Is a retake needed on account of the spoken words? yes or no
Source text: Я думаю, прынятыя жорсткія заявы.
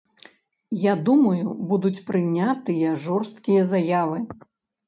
yes